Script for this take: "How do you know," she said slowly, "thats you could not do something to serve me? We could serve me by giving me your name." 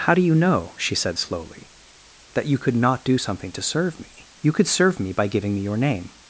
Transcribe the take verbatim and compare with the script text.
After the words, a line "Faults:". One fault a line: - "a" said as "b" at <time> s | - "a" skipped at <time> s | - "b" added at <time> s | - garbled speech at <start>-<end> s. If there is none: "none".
"How do you know," she said slowly, "that you could not do something to serve me? You could serve me by giving me your name."
Faults:
- "thats" said as "that" at 2.3 s
- "We" said as "You" at 4.4 s